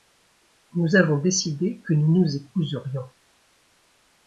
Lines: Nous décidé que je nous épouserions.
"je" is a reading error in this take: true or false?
true